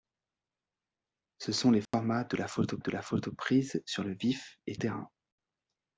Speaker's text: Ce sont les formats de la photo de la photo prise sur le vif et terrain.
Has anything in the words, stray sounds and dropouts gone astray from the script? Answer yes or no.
yes